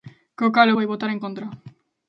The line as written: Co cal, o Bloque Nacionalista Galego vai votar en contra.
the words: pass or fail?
fail